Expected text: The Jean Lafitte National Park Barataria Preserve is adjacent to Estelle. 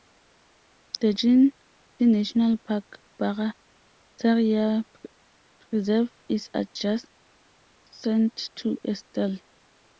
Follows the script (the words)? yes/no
no